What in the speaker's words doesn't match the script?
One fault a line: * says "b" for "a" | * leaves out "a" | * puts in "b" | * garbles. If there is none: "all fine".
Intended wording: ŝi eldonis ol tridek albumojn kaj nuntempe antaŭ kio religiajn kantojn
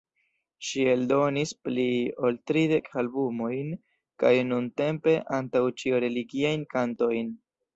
* puts in "pli"
* says "ĉio" for "kio"